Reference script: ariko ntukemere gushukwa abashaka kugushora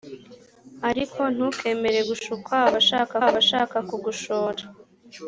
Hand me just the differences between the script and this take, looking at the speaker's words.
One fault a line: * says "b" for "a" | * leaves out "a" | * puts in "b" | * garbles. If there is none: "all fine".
* puts in "abashaka"